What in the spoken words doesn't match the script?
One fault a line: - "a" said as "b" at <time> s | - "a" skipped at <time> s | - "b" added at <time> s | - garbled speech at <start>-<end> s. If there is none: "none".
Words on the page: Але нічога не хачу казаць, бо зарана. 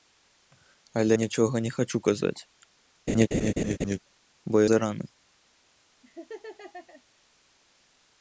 none